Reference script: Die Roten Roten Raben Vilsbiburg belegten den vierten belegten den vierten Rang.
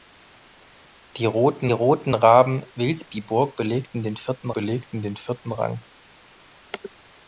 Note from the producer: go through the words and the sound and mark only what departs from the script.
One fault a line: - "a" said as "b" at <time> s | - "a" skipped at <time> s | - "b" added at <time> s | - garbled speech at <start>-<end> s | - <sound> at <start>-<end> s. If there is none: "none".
none